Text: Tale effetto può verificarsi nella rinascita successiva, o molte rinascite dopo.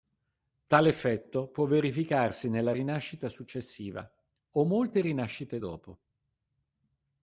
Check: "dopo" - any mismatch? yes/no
no